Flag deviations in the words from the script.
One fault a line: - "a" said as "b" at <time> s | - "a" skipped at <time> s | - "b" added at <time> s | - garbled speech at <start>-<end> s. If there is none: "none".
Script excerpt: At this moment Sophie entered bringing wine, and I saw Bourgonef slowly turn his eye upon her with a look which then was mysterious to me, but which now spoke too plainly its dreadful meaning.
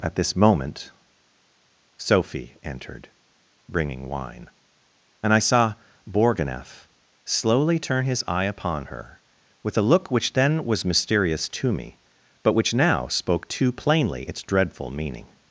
none